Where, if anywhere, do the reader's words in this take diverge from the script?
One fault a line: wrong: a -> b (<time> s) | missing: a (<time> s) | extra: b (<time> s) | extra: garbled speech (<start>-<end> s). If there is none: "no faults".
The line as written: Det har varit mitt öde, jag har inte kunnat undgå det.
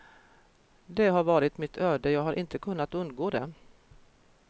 no faults